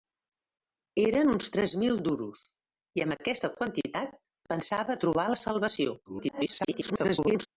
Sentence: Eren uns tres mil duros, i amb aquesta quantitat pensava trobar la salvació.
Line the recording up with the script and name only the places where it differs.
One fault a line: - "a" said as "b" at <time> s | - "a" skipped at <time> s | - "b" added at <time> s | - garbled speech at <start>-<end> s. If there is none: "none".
- garbled speech at 6.1-7.5 s